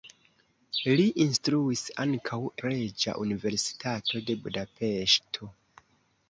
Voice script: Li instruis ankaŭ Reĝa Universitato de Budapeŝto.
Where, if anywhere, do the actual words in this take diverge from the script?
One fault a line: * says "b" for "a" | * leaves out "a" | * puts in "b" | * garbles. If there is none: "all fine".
all fine